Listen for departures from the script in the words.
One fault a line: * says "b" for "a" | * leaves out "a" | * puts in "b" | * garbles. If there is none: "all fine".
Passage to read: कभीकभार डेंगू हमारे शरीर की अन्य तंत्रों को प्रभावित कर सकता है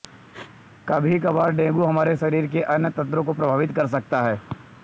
* says "के" for "की"